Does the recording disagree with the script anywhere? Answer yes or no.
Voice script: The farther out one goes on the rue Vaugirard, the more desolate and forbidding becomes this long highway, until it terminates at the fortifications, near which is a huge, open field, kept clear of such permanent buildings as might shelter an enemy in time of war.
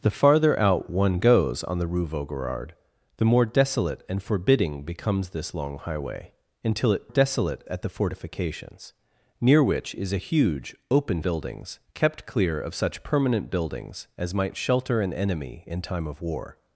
yes